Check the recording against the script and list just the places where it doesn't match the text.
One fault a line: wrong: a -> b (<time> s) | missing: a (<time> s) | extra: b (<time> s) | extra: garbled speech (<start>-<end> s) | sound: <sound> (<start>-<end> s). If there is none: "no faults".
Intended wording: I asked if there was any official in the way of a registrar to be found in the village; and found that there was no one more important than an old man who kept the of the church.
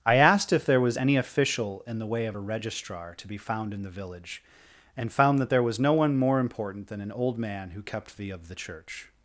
no faults